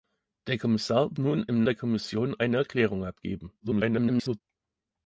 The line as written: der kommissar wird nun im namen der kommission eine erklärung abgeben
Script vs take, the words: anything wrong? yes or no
yes